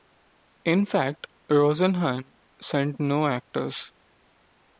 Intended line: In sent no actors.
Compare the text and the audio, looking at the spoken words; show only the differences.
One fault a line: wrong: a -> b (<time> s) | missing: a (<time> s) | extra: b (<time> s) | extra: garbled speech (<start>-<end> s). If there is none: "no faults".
extra: fact Rosenhan (0.8 s)